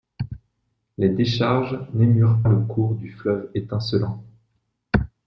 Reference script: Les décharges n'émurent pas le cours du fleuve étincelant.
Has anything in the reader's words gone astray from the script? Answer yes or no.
yes